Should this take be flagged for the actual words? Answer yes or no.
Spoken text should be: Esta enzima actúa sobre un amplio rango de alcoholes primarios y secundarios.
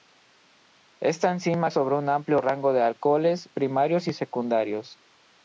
yes